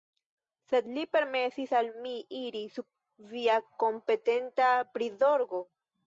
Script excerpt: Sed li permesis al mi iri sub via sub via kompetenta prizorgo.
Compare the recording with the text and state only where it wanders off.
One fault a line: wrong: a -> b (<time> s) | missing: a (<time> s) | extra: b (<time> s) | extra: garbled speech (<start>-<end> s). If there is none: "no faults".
missing: sub via (3.6 s)